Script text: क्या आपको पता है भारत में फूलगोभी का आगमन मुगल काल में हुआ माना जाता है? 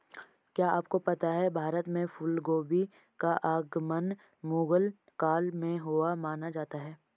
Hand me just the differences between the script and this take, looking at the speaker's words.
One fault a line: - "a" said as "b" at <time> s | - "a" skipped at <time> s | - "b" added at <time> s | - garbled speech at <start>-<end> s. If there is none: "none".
none